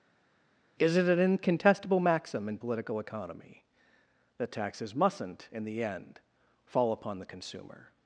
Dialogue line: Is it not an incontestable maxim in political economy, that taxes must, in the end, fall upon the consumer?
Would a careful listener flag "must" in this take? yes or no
yes